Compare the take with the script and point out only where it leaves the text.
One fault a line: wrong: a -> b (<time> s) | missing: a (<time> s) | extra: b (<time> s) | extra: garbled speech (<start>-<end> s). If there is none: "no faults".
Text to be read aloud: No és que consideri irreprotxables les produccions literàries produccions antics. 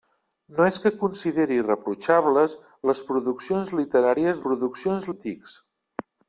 no faults